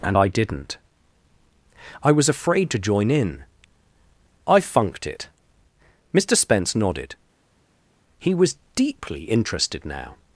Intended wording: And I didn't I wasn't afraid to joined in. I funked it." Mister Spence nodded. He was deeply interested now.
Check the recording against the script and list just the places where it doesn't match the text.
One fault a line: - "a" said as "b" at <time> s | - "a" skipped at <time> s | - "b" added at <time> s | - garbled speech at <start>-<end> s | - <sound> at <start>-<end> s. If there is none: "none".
- "wasn't" said as "was" at 2.1 s
- "joined" said as "join" at 2.8 s